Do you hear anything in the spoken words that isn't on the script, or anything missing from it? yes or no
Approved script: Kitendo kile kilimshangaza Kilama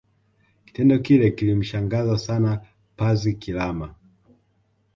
yes